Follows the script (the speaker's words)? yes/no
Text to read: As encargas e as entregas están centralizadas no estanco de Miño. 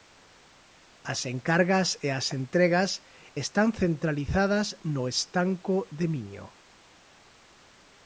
yes